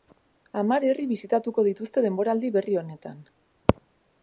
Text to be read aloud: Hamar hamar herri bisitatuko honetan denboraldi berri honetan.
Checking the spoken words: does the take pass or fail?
fail